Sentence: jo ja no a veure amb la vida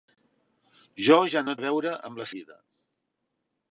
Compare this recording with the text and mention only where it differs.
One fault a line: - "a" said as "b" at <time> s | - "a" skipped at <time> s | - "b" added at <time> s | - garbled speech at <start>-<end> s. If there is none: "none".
none